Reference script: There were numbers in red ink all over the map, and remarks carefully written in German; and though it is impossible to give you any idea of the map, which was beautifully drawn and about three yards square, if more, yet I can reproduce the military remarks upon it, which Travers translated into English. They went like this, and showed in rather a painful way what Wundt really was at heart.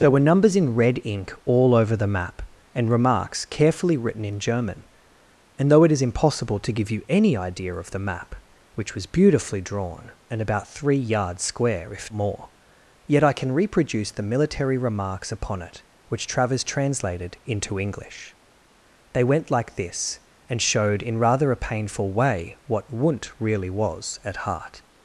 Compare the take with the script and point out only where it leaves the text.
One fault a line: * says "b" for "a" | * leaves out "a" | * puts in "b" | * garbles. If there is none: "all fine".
all fine